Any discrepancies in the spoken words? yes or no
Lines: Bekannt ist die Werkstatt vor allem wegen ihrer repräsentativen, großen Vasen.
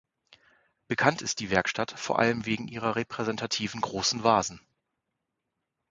no